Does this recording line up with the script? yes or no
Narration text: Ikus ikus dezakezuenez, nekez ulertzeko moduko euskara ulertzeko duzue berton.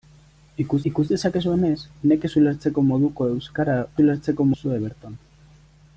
yes